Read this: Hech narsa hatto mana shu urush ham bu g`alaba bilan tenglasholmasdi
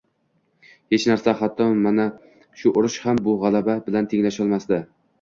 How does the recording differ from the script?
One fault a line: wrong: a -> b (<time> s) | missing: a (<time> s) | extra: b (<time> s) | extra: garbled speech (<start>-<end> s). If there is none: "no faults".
no faults